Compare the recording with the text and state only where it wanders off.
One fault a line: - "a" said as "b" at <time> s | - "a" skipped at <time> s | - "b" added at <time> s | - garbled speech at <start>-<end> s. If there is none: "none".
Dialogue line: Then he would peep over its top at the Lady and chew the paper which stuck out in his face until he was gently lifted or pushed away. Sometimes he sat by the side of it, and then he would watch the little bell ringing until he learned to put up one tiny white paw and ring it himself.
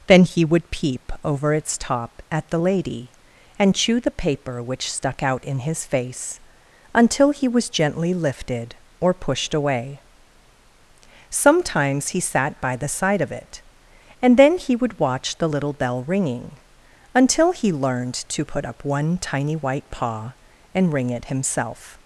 none